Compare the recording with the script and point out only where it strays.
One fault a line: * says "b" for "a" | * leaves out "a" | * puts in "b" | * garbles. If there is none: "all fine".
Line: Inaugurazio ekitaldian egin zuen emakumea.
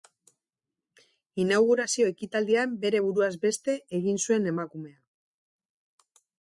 * puts in "bere buruaz beste"